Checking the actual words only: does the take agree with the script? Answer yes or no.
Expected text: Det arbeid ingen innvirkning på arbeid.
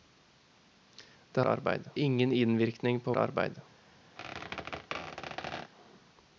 yes